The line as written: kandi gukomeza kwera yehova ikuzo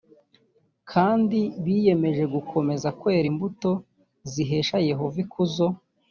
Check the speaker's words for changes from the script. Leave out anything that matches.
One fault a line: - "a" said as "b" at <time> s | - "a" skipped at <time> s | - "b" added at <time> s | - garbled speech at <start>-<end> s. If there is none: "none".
- "biyemeje" added at 1.6 s
- "imbuto zihesha" added at 3.3 s